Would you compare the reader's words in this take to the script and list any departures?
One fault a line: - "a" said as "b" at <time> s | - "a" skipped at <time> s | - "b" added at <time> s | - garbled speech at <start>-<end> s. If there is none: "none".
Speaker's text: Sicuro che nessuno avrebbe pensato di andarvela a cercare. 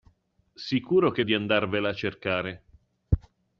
- "nessuno avrebbe pensato" skipped at 1.2 s